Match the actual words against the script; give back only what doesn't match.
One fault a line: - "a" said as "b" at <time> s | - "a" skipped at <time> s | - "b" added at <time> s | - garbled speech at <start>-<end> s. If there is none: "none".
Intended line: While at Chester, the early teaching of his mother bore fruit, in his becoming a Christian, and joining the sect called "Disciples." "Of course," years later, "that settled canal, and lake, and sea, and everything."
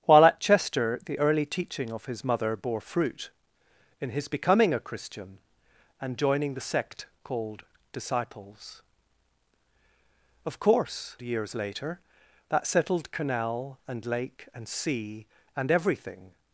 none